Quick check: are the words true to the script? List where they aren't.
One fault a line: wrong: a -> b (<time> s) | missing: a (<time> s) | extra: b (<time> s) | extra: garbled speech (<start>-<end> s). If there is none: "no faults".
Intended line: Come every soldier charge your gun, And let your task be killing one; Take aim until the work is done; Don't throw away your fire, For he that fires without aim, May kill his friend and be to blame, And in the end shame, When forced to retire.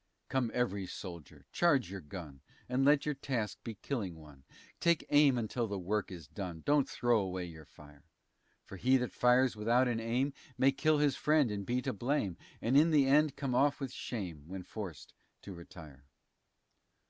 extra: an (9.9 s)
extra: come off with (13.3 s)